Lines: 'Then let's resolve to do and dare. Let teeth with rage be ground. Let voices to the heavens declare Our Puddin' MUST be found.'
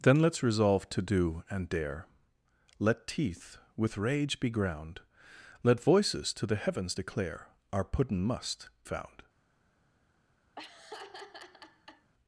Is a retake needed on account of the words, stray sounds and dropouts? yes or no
yes